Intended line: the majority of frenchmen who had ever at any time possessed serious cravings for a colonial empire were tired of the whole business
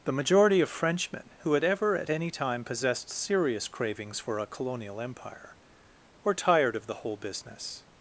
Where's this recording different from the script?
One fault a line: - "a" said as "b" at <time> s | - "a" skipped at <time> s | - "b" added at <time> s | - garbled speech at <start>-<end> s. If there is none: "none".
none